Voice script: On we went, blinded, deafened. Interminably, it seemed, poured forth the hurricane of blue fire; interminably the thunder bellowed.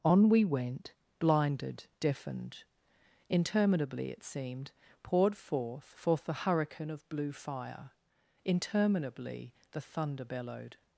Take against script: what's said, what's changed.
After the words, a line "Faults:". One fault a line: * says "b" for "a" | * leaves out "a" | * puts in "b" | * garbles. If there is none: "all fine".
On we went, blinded, deafened. Interminably, it seemed, poured forth forth the hurricane of blue fire; interminably the thunder bellowed.
Faults:
* puts in "forth"